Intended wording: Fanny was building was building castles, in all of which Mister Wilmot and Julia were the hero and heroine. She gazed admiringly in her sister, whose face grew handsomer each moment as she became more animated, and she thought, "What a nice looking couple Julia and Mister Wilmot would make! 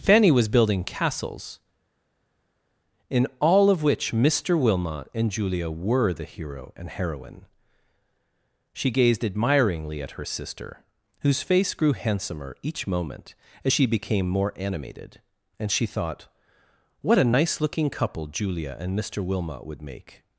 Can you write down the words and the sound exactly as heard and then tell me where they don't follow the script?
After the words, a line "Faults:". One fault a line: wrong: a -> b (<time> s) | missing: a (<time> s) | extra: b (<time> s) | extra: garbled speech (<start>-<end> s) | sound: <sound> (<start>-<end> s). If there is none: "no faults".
Fanny was building castles, in all of which Mister Wilmot and Julia were the hero and heroine. She gazed admiringly at her sister, whose face grew handsomer each moment as she became more animated, and she thought, "What a nice looking couple Julia and Mister Wilmot would make!
Faults:
missing: was building (0.8 s)
wrong: in -> at (10.0 s)